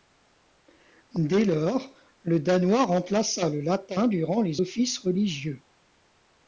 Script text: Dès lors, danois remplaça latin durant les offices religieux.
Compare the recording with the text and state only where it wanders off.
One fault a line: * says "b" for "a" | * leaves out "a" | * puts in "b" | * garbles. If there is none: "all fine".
* puts in "le"
* puts in "le"